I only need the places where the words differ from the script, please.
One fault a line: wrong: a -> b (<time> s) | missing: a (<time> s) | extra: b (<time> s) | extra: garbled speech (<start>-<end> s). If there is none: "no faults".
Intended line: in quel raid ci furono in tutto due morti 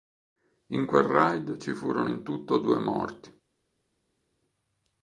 no faults